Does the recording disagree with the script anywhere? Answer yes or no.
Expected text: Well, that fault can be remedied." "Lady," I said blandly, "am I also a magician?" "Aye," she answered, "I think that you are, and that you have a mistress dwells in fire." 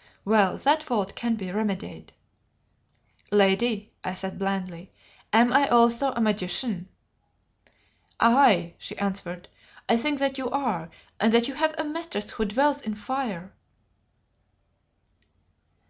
yes